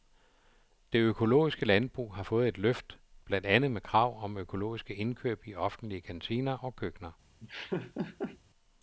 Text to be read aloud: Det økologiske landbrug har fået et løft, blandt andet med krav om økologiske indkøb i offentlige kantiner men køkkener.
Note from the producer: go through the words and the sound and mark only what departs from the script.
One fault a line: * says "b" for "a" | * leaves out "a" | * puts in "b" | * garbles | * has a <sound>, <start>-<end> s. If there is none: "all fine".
* says "og" for "men"
* has a laugh, 7.4-8.4 s